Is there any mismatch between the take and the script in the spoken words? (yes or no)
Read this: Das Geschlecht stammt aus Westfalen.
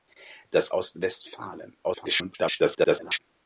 yes